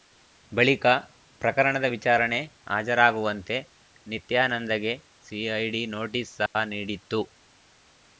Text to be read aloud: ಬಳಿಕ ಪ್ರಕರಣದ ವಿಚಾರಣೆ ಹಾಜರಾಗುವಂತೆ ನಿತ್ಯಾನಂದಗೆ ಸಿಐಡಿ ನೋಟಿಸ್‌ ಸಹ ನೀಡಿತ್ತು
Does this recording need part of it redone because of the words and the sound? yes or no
yes